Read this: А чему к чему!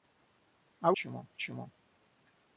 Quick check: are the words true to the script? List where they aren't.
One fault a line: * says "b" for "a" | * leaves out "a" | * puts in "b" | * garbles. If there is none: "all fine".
all fine